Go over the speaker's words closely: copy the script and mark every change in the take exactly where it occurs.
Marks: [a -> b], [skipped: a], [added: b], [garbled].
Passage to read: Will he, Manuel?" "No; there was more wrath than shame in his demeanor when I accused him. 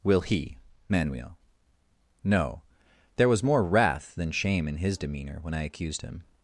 Will he, Manuel?" "No; there was more wrath than shame in his demeanor when I accused him.